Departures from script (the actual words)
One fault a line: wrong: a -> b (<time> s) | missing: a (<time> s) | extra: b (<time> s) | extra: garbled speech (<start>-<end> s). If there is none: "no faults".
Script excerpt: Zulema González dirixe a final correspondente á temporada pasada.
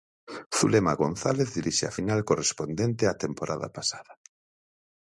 no faults